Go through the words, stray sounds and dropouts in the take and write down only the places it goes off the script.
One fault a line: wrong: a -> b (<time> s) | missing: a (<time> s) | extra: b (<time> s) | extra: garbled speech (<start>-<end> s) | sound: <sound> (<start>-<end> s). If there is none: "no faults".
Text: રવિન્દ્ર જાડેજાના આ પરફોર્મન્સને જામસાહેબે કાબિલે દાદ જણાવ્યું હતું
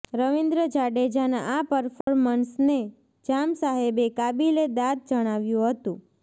sound: dropout (2.0-2.1 s)